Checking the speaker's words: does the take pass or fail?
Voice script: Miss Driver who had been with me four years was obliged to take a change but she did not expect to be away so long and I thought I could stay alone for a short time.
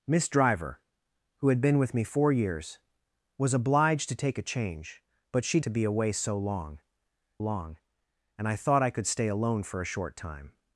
fail